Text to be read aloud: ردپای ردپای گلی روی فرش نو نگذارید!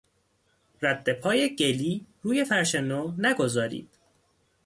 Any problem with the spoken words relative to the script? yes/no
yes